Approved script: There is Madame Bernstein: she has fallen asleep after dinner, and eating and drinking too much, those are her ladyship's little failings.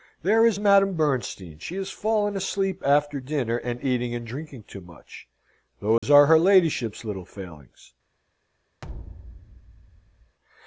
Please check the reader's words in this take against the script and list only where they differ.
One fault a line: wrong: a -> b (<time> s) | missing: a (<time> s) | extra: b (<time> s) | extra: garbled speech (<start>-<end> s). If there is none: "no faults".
no faults